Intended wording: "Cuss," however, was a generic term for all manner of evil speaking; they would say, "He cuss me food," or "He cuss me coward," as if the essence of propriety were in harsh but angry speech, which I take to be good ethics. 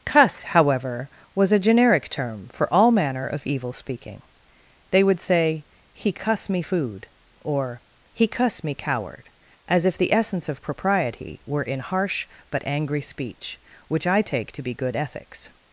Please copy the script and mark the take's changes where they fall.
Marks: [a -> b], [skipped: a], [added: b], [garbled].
"Cuss," however, was a generic term for all manner of evil speaking; they would say, "He cuss me food," or "He cuss me coward," as if the essence of propriety were in harsh but angry speech, which I take to be good ethics.